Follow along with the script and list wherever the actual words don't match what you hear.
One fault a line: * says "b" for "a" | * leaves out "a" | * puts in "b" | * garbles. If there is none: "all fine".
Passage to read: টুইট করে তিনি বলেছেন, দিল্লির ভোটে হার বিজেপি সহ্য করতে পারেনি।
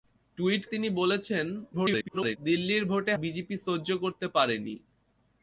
* leaves out "করে"
* garbles
* leaves out "হার"